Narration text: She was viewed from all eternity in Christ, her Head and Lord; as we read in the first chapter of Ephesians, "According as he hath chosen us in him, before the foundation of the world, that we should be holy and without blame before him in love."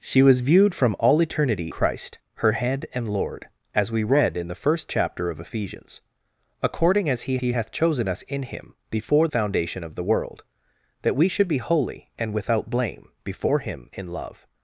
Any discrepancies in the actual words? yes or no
yes